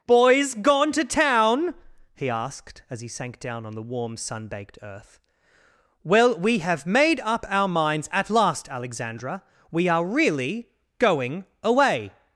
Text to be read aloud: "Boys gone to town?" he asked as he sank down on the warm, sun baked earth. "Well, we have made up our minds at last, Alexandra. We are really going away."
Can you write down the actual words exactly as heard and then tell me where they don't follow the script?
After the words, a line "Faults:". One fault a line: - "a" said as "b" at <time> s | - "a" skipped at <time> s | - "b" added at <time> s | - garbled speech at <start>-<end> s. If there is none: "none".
"Boys gone to town?" he asked as he sank down on the warm, sun baked earth. "Well, we have made up our minds at last, Alexandra. We are really going away."
Faults:
none